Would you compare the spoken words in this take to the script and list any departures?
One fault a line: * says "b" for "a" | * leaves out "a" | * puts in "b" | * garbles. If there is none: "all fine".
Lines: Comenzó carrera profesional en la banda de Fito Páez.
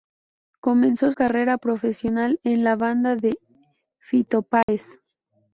all fine